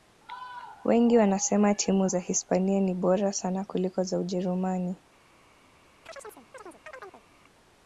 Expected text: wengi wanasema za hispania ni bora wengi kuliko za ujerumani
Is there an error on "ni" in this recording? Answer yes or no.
no